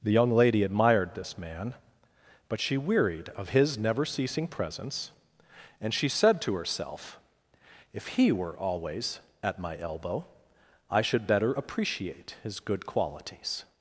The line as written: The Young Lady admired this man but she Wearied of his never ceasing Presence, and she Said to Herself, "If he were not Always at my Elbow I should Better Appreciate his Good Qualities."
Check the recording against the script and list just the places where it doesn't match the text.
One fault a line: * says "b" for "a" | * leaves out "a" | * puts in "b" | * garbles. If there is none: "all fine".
* leaves out "not"